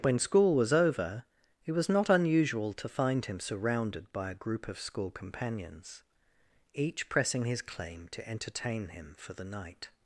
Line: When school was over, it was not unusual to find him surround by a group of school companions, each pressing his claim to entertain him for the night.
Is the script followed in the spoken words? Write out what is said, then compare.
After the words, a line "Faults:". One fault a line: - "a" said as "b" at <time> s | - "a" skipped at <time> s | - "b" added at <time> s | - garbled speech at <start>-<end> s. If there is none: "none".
When school was over, it was not unusual to find him surrounded by a group of school companions, each pressing his claim to entertain him for the night.
Faults:
- "surround" said as "surrounded" at 3.4 s